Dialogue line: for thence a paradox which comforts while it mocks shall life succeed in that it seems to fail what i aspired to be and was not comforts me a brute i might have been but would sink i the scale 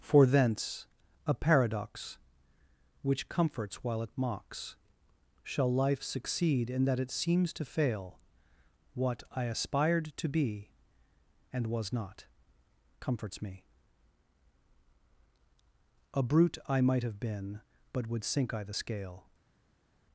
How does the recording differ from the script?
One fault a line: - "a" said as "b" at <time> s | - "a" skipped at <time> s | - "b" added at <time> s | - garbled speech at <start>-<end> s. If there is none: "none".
none